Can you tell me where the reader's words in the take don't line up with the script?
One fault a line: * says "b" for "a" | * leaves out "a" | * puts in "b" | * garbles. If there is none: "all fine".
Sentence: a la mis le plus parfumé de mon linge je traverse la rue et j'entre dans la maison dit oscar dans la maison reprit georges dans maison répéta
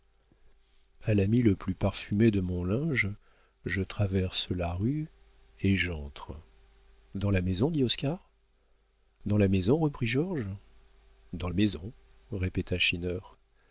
all fine